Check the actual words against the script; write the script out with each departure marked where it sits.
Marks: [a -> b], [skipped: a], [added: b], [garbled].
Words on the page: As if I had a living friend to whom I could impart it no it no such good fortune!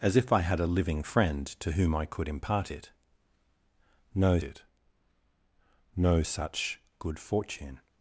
As if I had a living friend to whom I could impart it no it no such good fortune!